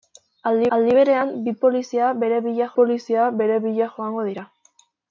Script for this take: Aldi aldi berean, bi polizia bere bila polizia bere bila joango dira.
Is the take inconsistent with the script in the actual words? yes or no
no